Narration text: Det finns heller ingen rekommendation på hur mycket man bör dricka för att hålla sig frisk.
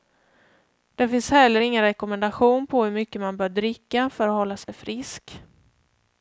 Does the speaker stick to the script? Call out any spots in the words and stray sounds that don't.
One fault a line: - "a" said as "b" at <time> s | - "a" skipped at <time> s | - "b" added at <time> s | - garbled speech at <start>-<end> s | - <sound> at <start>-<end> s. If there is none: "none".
- dropout at 4.6-4.7 s